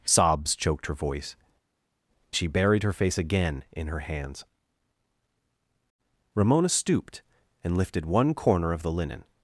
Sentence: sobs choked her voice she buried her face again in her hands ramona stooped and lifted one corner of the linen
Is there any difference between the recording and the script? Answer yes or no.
no